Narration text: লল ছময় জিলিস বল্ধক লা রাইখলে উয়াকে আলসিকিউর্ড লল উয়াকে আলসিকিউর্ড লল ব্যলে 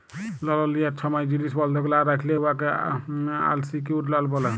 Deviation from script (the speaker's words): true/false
true